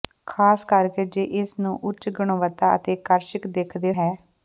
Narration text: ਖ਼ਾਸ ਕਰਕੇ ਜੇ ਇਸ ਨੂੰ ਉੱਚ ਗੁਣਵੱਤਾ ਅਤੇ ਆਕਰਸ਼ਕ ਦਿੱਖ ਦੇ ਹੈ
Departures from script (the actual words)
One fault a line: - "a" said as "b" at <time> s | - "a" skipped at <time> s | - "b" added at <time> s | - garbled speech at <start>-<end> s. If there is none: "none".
none